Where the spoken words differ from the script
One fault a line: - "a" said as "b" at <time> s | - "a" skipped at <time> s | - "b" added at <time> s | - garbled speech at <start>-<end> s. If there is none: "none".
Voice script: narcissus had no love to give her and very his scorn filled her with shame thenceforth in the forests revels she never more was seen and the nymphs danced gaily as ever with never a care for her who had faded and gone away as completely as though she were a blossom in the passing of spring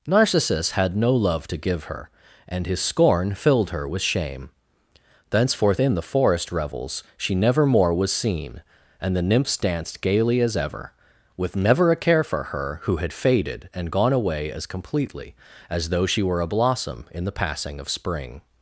- "very" skipped at 2.7 s
- "forests" said as "forest" at 6.0 s